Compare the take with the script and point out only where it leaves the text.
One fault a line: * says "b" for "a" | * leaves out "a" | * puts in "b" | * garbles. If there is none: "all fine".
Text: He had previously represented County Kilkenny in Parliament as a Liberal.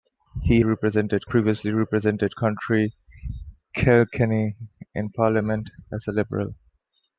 * says "represented" for "had"